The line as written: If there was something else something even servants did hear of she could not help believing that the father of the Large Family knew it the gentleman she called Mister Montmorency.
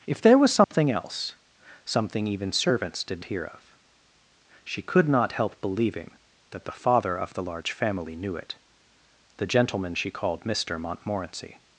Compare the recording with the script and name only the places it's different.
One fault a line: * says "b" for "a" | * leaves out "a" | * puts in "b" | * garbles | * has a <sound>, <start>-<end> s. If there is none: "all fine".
* has a dropout, 0.6-0.7 s